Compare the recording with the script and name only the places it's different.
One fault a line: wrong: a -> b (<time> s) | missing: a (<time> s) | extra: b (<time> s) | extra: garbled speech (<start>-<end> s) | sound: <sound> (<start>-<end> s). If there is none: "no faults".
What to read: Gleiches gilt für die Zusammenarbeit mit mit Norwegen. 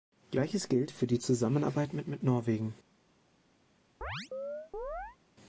sound: chirp (4.0-5.2 s)